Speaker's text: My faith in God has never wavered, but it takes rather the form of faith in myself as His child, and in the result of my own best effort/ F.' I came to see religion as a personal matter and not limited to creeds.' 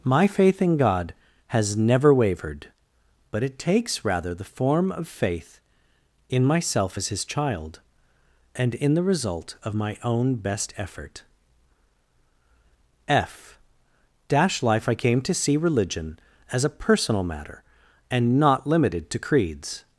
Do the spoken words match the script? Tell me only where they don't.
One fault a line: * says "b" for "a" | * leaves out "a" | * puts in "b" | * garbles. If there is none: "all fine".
* puts in "dash life"